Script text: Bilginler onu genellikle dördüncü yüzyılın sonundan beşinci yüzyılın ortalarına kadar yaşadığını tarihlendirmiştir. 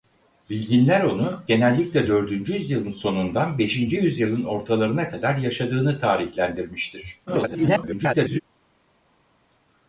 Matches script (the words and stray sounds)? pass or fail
fail